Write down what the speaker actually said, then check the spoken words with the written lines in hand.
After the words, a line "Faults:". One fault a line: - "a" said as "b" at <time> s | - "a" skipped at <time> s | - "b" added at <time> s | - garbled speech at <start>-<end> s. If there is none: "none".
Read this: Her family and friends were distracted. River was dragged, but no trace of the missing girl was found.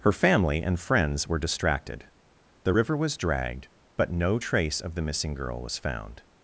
Her family and friends were distracted. The river was dragged, but no trace of the missing girl was found.
Faults:
- "The" added at 2.6 s